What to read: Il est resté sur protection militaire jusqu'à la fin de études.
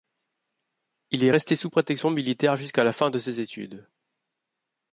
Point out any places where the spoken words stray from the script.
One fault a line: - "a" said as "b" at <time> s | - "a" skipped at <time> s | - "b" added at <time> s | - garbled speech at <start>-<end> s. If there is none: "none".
- "sur" said as "sous" at 1.6 s
- "ses" added at 3.2 s